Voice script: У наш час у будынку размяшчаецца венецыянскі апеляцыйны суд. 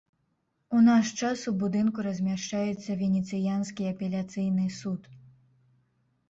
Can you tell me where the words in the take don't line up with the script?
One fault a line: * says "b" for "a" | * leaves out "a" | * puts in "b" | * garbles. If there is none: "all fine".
all fine